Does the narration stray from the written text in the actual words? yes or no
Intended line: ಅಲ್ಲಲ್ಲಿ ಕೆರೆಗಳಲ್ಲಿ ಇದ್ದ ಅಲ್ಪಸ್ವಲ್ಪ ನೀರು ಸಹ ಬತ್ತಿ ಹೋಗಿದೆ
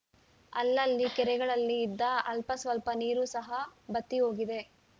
no